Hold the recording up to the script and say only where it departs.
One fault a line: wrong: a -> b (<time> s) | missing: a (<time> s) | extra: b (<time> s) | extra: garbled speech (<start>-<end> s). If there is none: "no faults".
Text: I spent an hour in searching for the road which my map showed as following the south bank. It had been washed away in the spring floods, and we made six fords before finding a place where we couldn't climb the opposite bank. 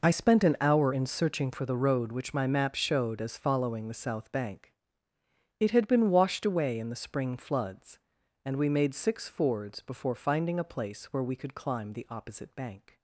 wrong: couldn't -> could (11.4 s)